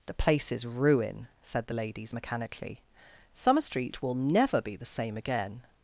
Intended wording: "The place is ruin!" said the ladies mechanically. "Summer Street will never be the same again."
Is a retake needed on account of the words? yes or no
no